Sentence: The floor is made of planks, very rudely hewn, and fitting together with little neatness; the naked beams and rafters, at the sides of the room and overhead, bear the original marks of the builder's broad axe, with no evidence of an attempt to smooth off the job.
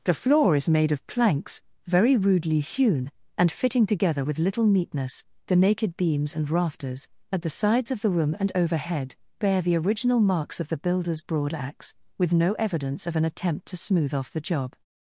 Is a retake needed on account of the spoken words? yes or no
no